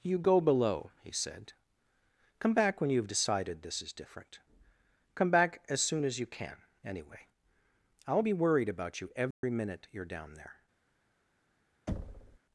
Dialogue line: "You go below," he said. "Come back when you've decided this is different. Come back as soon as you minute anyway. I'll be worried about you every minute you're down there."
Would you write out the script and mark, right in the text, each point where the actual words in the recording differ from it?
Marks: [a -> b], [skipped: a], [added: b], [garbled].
"You go below," he said. "Come back when you've decided this is different. Come back as soon as you [minute -> can] anyway. I'll be worried about you every minute you're down there."